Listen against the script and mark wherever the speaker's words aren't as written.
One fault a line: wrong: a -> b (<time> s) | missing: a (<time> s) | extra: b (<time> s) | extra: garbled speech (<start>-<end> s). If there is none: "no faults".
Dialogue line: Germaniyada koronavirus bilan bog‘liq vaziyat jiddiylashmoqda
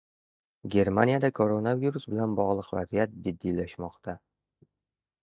no faults